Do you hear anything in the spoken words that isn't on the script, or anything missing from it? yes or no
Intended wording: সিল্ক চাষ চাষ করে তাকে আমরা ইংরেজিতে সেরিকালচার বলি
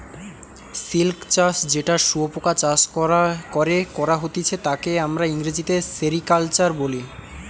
yes